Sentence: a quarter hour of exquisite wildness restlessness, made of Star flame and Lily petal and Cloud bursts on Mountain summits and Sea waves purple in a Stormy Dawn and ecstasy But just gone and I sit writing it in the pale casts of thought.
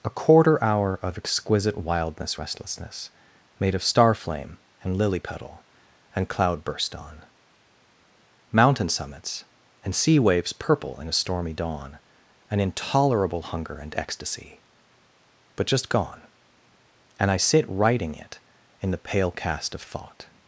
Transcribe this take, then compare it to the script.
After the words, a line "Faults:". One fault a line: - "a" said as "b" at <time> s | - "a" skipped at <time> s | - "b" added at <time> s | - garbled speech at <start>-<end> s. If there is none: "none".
a quarter hour of exquisite wildness restlessness, made of Star flame and Lily petal and Cloud burst on Mountain summits and Sea waves purple in a Stormy Dawn an intolerable hunger and ecstasy But just gone and I sit writing it in the pale cast of thought.
Faults:
- "bursts" said as "burst" at 6.6 s
- "an intolerable hunger" added at 12.5 s
- "casts" said as "cast" at 19.3 s